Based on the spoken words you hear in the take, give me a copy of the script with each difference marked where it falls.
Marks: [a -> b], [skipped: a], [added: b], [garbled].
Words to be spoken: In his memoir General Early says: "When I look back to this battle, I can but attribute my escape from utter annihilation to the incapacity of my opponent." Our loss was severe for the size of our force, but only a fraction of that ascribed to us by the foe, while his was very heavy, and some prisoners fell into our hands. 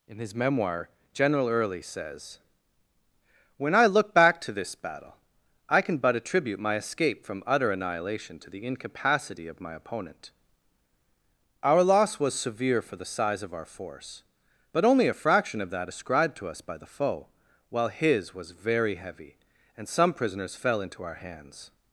In his memoir General Early says: "When I look back to this battle, I can but attribute my escape from utter annihilation to the incapacity of my opponent." Our loss was severe for the size of our force, but only a fraction of that ascribed to us by the foe, while his was very heavy, and some prisoners fell into our hands.